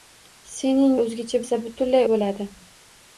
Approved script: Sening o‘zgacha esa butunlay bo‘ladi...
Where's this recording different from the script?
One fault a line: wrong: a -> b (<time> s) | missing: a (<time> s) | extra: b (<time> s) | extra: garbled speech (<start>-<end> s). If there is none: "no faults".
no faults